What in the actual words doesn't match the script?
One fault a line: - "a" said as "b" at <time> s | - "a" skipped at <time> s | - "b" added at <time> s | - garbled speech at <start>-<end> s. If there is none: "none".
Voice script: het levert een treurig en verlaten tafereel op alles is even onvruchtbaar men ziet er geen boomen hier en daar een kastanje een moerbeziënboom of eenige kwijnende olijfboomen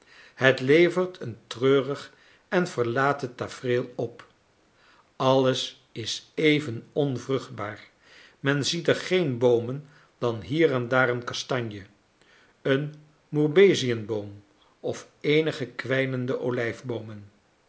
- "dan" added at 10.2 s